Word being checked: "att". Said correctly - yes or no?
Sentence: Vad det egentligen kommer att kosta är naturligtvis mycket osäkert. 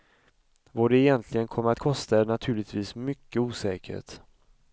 yes